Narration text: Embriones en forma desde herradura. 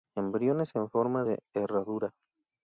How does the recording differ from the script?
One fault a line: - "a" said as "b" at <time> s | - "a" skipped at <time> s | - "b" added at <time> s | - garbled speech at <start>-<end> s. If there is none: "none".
- "desde" said as "de" at 1.2 s